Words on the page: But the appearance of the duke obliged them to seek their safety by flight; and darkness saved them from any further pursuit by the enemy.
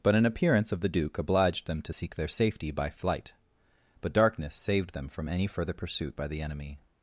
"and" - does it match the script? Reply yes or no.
no